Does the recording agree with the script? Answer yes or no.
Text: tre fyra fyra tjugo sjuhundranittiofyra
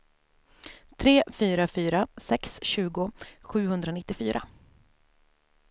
no